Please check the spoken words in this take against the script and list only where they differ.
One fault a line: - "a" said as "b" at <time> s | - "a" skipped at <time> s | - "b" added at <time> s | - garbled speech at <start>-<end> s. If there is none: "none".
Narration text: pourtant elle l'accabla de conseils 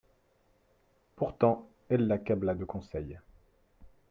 none